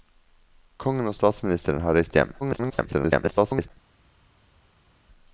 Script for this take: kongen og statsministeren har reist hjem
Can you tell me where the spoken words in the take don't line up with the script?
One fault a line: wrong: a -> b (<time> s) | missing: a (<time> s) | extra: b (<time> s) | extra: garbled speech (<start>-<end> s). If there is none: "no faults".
extra: garbled speech (2.4-3.7 s)